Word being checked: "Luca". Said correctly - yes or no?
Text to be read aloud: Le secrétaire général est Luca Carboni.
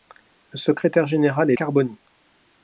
no